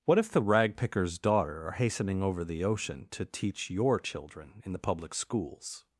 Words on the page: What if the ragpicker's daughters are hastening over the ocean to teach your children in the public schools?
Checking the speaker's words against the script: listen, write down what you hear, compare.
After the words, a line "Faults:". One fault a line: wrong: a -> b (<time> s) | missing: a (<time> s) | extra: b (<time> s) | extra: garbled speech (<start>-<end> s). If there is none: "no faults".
What if the ragpicker's daughter are hastening over the ocean to teach your children in the public schools?
Faults:
wrong: daughters -> daughter (1.2 s)